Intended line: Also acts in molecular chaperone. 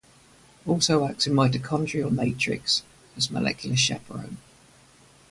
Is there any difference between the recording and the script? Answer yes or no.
yes